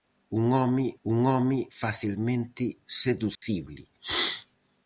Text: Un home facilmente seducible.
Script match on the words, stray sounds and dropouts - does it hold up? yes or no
no